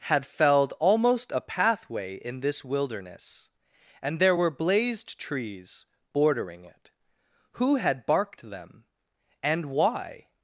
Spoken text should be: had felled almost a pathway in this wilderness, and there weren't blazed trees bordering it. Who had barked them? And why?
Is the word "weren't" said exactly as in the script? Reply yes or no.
no